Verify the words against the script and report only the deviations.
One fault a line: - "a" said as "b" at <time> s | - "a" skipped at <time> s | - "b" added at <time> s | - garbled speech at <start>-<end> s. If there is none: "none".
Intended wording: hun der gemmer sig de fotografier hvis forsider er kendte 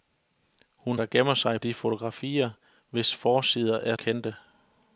none